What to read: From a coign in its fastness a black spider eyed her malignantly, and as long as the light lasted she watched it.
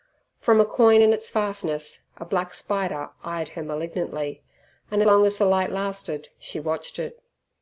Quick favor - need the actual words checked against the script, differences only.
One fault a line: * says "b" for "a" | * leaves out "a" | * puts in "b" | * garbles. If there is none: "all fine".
* leaves out "as"